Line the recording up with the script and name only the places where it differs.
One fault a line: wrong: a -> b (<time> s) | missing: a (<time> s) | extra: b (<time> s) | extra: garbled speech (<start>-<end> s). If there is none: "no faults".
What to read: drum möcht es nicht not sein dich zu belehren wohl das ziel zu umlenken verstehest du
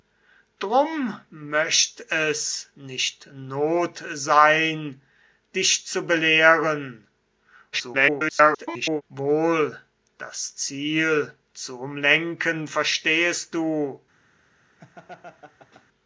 extra: garbled speech (7.7-9.0 s)